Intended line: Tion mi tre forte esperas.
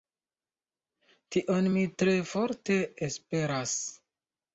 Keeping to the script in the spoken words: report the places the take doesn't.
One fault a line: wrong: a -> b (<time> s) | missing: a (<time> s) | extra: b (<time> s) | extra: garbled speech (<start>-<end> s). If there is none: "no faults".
no faults